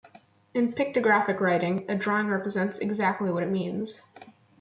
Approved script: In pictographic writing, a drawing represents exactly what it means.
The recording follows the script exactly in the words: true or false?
true